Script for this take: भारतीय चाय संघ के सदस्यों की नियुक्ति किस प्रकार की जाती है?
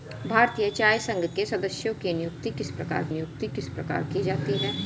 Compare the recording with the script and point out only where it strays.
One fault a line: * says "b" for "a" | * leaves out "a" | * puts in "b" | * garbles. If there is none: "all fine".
* puts in "नियुक्ति किस प्रकार"